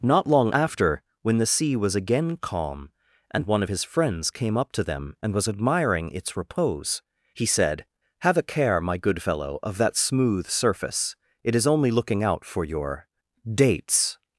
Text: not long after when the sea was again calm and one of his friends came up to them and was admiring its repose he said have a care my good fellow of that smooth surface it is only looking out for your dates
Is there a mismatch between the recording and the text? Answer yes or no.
no